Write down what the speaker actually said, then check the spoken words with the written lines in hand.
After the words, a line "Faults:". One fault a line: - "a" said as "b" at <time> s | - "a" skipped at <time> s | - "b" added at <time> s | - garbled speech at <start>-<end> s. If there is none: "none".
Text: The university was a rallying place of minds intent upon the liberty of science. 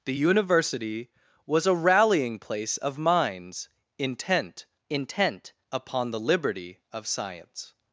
The university was a rallying place of minds intent intent upon the liberty of science.
Faults:
- "intent" added at 4.9 s